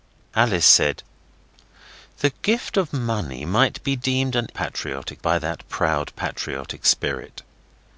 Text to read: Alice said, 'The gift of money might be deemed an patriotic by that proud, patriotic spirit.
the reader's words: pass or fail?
pass